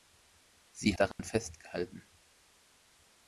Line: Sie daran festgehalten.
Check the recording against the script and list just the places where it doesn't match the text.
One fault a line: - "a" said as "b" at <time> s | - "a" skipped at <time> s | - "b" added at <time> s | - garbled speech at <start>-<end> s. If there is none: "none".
none